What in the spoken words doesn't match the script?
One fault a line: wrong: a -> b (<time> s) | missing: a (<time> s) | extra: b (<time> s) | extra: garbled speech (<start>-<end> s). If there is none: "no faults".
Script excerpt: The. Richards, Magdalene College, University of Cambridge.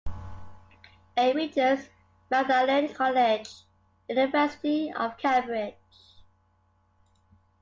wrong: The -> A (1.1 s)